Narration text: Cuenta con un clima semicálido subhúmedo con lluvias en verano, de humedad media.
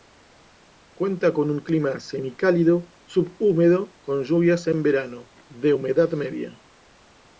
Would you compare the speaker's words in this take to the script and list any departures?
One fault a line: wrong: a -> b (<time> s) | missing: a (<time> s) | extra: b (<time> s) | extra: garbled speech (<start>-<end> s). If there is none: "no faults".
no faults